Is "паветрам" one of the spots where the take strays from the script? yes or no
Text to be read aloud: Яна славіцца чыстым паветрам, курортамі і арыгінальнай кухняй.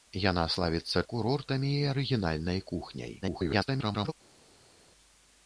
yes